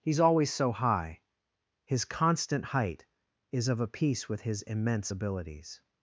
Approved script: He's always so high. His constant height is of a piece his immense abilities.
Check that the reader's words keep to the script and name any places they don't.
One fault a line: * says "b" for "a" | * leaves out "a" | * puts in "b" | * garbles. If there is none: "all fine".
* puts in "with"